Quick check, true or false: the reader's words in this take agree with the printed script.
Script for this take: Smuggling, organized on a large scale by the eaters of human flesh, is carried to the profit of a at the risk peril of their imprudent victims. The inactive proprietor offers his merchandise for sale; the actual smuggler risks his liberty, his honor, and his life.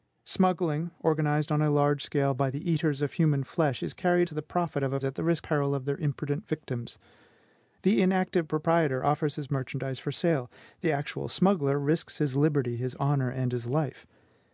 true